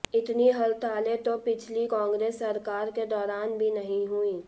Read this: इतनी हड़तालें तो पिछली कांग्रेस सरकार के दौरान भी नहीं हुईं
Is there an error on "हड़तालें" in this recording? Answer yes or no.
no